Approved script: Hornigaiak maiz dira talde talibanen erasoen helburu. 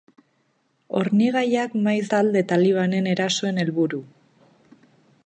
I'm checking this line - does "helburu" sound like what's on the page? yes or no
yes